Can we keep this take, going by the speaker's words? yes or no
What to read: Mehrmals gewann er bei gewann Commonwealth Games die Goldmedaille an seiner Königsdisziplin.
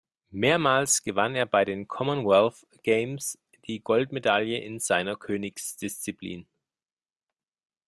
no